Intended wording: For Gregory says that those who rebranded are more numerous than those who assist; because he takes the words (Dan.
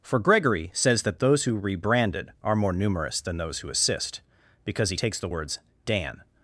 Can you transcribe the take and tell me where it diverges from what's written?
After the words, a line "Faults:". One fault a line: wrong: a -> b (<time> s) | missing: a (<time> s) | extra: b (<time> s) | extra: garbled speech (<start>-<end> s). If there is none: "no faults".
For Gregory says that those who rebranded are more numerous than those who assist; because he takes the words (Dan.
Faults:
no faults